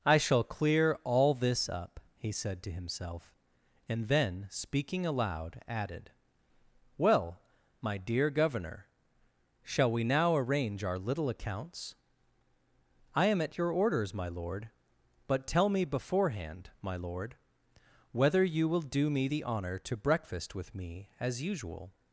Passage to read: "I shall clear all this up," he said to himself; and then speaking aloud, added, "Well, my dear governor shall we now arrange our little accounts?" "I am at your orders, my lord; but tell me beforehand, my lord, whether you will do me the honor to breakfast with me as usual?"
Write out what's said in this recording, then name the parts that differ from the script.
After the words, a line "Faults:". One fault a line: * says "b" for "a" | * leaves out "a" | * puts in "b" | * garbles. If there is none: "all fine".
"I shall clear all this up," he said to himself; and then speaking aloud, added, "Well, my dear governor shall we now arrange our little accounts?" "I am at your orders, my lord; but tell me beforehand, my lord, whether you will do me the honor to breakfast with me as usual?"
Faults:
all fine